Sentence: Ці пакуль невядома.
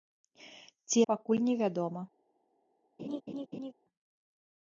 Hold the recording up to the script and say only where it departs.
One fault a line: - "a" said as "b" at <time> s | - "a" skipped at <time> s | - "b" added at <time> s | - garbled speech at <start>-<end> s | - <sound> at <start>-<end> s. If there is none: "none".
- laugh at 3.0-3.7 s